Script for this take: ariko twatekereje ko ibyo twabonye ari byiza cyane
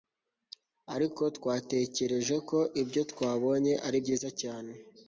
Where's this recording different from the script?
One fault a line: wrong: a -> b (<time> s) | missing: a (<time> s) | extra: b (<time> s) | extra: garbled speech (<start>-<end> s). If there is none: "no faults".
no faults